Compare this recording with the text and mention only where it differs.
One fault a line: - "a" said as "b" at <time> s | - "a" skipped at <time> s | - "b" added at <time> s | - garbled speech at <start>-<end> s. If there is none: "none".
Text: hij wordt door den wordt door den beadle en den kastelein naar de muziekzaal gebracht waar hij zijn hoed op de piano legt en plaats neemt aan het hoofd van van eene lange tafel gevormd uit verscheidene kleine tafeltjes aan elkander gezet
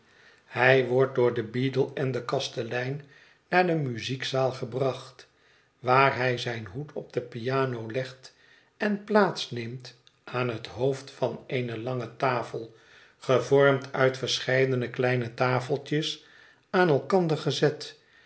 - "wordt door den" skipped at 1.5 s
- "van" skipped at 11.4 s